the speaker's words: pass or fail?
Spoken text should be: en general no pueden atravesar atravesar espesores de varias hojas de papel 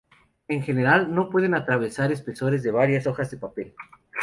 fail